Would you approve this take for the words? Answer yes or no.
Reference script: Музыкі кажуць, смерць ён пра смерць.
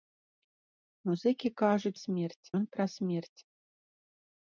yes